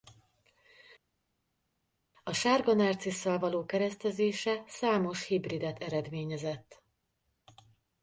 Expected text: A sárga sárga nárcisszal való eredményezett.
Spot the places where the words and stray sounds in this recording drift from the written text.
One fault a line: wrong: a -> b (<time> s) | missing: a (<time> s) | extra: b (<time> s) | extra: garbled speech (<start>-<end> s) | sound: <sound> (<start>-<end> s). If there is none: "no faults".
missing: sárga (2.7 s)
extra: keresztezése számos hibridet (3.6 s)